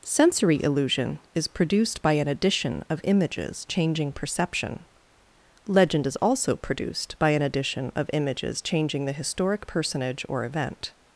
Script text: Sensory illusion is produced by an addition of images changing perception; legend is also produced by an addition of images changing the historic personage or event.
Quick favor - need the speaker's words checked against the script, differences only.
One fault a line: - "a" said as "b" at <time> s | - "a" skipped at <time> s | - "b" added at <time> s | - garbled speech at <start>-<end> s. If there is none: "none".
none